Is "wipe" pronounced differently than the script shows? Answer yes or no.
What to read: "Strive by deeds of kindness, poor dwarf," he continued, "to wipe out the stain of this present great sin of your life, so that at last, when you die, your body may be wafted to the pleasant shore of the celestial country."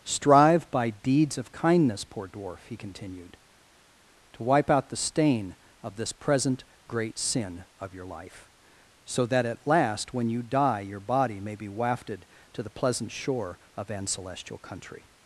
no